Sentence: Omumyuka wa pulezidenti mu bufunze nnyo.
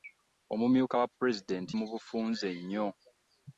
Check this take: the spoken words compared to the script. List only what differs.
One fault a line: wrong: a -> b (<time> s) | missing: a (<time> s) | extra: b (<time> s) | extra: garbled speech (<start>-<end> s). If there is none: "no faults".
no faults